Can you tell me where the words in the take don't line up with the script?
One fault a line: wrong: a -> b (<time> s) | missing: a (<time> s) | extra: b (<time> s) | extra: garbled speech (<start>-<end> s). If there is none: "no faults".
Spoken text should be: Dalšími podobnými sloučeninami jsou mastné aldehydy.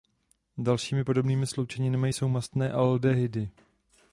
no faults